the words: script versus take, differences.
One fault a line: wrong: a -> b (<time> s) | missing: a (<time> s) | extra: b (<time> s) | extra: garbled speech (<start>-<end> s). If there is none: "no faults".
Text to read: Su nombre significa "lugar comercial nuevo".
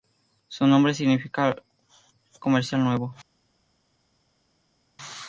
missing: lugar (1.6 s)